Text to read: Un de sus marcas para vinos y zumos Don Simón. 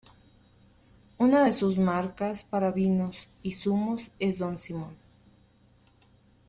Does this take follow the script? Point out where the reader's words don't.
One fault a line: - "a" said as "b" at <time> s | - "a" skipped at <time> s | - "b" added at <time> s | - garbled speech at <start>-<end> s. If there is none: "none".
- "Un" said as "Una" at 1.2 s
- "es" added at 4.2 s